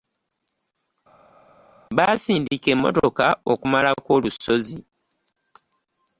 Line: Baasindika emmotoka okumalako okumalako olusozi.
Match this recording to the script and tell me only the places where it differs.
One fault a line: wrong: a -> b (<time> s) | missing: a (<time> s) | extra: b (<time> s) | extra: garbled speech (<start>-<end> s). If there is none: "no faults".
missing: okumalako (4.1 s)